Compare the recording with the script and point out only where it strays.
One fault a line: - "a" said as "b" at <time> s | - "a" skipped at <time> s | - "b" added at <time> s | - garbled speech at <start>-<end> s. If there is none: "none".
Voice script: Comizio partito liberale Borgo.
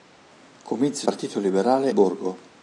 none